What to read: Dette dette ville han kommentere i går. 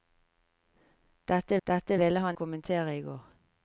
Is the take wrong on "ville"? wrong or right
right